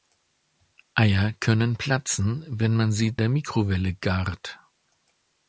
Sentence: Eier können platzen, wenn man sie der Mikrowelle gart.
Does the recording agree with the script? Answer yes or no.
yes